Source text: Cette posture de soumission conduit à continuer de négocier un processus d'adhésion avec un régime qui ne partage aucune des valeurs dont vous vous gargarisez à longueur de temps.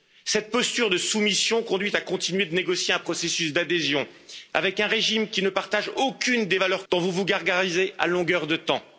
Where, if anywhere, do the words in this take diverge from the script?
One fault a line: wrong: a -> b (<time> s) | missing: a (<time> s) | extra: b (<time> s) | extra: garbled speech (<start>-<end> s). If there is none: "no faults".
no faults